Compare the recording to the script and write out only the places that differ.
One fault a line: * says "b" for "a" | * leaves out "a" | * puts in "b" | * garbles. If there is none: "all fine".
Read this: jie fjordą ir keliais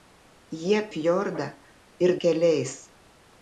all fine